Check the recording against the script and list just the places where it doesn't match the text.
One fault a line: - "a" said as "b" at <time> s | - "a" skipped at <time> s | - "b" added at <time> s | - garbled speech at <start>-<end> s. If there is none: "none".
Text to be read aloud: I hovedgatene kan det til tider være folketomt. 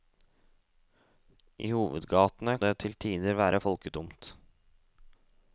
- "kan" skipped at 2.5 s